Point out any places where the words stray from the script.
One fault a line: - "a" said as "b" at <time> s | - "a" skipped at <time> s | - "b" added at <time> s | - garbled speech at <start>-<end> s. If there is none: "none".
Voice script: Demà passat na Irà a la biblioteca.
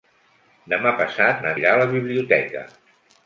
none